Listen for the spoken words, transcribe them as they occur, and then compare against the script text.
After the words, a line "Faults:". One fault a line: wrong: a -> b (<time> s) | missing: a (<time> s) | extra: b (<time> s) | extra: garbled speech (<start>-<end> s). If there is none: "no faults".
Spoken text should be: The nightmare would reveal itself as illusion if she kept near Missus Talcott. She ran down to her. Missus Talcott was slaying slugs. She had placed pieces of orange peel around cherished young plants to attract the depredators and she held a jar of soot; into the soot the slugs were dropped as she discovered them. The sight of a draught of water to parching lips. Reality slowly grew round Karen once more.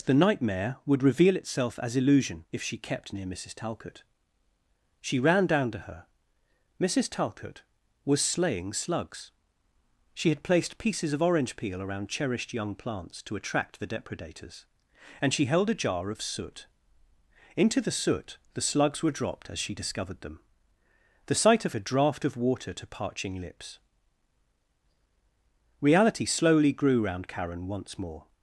The nightmare would reveal itself as illusion if she kept near Missus Talcott. She ran down to her. Missus Talcott was slaying slugs. She had placed pieces of orange peel around cherished young plants to attract the depredators and she held a jar of soot; into the soot the slugs were dropped as she discovered them. The sight of a draught of water to parching lips. Reality slowly grew round Karen once more.
Faults:
no faults